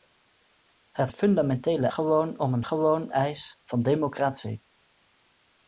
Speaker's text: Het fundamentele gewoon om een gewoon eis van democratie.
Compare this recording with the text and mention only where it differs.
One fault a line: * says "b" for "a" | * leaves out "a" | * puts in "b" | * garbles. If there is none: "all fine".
all fine